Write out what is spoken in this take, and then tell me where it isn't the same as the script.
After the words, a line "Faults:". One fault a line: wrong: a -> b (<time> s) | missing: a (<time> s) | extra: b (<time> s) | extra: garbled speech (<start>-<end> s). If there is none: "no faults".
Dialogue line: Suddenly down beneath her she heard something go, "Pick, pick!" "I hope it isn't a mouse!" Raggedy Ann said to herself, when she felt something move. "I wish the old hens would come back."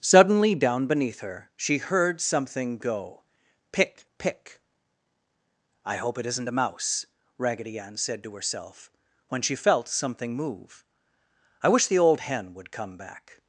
Suddenly down beneath her she heard something go, "Pick, pick!" "I hope it isn't a mouse!" Raggedy Ann said to herself, when she felt something move. "I wish the old hen would come back."
Faults:
wrong: hens -> hen (12.2 s)